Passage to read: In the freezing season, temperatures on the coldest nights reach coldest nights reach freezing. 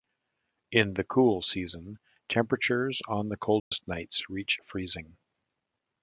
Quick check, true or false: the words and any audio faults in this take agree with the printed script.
false